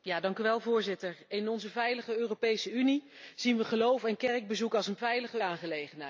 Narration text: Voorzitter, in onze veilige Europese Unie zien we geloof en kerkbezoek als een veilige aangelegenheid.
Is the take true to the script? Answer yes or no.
yes